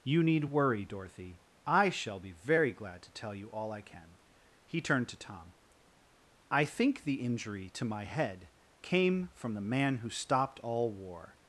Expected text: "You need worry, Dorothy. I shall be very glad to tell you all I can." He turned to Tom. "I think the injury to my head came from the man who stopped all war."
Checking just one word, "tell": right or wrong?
right